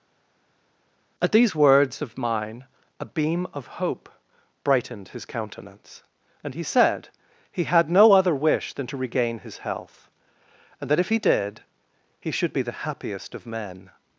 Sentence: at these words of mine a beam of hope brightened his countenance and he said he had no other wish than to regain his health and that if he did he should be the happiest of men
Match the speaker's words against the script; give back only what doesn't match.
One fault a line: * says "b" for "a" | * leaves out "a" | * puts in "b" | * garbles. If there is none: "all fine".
all fine